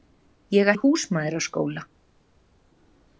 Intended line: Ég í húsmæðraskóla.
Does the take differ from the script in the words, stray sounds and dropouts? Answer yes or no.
no